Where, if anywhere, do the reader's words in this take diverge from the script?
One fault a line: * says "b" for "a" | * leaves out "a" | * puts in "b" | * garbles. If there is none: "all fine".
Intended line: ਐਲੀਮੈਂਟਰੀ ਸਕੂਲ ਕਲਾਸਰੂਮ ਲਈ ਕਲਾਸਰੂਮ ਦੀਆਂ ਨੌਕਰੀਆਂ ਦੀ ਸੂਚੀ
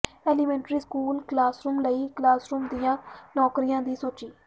all fine